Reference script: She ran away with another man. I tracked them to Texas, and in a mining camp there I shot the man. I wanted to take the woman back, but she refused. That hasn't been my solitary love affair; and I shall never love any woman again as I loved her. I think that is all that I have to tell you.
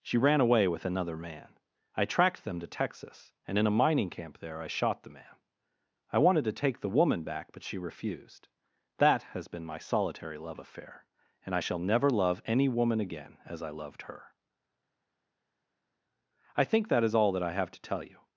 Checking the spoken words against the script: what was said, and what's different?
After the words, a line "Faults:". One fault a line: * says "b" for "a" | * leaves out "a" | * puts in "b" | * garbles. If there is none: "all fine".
She ran away with another man. I tracked them to Texas, and in a mining camp there I shot the man. I wanted to take the woman back, but she refused. That has been my solitary love affair; and I shall never love any woman again as I loved her. I think that is all that I have to tell you.
Faults:
* says "has" for "hasn't"